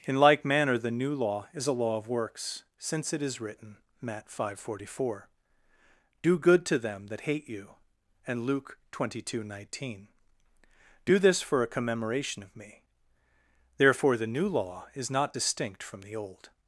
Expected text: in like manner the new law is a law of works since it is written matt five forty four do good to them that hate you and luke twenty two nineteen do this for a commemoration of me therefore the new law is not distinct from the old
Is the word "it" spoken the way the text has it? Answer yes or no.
yes